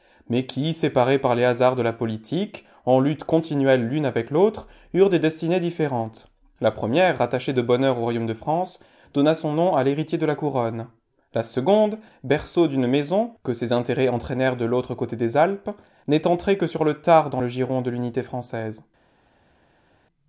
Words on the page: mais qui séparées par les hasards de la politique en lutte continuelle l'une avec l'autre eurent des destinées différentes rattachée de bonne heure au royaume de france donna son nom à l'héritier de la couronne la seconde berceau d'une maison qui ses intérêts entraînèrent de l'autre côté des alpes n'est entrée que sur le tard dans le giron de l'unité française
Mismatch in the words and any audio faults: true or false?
true